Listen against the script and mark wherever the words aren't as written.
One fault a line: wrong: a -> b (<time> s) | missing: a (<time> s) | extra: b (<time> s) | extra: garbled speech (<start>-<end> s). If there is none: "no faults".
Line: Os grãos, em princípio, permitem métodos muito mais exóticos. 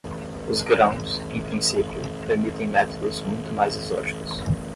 no faults